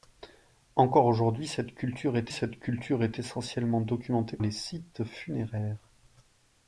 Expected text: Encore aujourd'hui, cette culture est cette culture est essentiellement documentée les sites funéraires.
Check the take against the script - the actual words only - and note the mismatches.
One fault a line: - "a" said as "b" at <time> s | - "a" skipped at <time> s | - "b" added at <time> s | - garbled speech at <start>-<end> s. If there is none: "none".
none